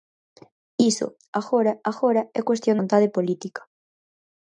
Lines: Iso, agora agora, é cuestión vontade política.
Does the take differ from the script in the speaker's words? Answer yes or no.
no